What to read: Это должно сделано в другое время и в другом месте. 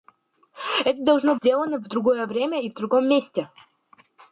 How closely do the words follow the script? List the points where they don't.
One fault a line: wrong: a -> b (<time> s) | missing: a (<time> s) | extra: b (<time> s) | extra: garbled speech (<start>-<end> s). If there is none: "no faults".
no faults